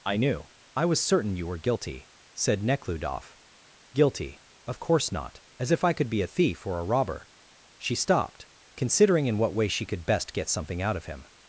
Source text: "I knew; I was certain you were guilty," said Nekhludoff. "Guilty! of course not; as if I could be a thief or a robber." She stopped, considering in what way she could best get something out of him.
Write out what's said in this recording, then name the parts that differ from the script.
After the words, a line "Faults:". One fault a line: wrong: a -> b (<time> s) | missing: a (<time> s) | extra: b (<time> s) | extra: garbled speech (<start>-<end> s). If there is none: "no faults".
"I knew; I was certain you were guilty," said Nekhludoff. "Guilty! of course not; as if I could be a thief or a robber." She stopped, considering in what way she could best get something out of him.
Faults:
no faults